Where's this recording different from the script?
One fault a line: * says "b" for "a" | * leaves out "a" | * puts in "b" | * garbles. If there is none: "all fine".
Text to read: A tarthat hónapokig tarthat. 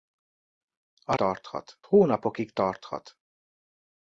all fine